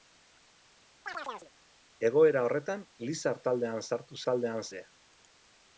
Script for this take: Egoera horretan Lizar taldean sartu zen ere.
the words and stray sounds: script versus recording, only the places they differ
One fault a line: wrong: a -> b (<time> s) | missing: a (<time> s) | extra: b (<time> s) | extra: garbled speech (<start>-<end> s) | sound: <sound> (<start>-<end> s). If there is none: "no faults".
sound: chirp (1.1-1.5 s)
wrong: zen -> taldean (4.3 s)